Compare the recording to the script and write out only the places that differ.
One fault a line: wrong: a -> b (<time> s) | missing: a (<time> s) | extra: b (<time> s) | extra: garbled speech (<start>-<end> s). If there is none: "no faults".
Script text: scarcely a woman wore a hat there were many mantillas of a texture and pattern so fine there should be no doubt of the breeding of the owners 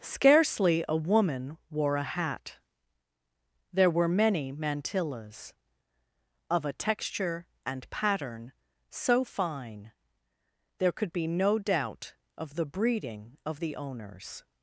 wrong: should -> could (10.9 s)